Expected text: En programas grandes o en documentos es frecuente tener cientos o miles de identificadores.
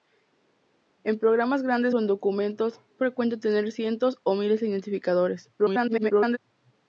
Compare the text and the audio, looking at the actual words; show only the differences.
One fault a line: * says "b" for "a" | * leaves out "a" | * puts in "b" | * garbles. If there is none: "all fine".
* leaves out "es"
* garbles